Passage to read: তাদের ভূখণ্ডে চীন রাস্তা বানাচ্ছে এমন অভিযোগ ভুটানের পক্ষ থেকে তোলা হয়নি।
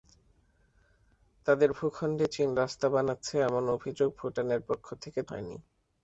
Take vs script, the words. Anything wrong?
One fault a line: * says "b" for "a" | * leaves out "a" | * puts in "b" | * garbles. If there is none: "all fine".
* leaves out "তোলা"